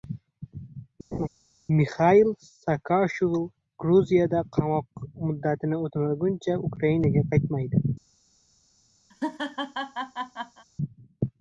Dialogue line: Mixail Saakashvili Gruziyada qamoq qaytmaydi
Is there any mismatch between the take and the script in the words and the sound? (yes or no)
yes